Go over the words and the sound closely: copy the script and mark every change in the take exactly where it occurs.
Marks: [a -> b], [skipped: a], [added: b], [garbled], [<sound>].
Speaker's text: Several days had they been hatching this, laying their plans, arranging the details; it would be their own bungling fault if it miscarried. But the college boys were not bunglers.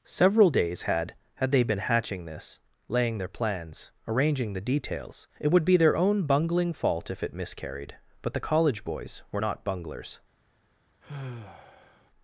Several days had [added: had] they been hatching this, laying their plans, arranging the details; it would be their own bungling fault if it miscarried. But the college boys were not bunglers. [sigh]